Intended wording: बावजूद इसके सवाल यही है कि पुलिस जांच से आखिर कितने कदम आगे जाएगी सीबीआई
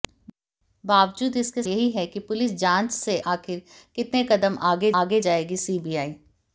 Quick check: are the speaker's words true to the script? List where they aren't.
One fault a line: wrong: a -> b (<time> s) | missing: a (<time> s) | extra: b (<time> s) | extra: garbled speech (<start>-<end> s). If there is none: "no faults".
missing: सवाल (1.6 s)
extra: आगे (5.0 s)